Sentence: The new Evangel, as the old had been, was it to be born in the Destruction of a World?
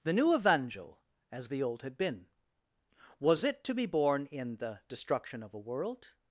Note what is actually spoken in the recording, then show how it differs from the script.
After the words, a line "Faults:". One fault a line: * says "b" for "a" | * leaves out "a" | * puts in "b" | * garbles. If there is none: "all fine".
The new Evangel, as the old had been, was it to be born in the Destruction of a World?
Faults:
all fine